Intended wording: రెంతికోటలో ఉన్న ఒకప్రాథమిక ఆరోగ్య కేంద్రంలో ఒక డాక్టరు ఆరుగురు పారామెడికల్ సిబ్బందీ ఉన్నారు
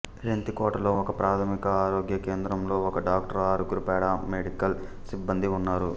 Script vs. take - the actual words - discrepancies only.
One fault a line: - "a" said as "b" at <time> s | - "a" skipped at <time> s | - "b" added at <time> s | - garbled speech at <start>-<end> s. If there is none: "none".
- "ఉన్న" skipped at 0.9 s